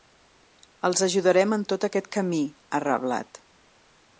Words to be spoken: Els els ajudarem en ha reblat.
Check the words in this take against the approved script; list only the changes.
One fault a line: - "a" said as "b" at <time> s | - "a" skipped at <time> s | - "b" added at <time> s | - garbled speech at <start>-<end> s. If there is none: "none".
- "els" skipped at 1.0 s
- "tot aquest camí" added at 1.7 s